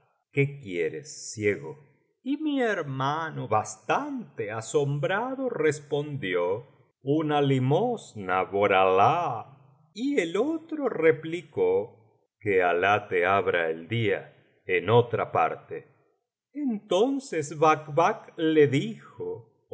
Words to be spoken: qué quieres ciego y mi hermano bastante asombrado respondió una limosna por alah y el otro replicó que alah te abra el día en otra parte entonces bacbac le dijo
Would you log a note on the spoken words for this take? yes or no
no